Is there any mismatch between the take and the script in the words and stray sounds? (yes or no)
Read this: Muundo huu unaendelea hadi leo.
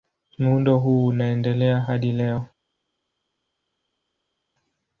no